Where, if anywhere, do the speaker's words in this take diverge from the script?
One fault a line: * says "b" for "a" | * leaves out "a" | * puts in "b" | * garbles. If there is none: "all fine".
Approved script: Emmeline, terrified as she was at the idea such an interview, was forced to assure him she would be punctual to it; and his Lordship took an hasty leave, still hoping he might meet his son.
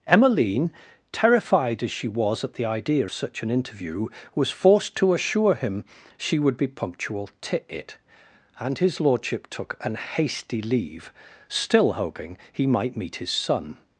all fine